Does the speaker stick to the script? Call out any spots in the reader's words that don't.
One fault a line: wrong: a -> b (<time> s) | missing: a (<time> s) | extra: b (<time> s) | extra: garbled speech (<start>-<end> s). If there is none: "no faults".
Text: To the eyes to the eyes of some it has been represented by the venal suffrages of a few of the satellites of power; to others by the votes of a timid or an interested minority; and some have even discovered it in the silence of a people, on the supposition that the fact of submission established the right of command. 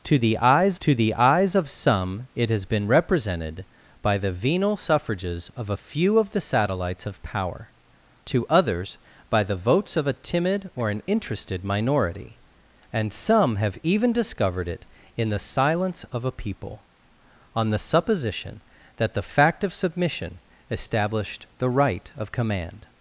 no faults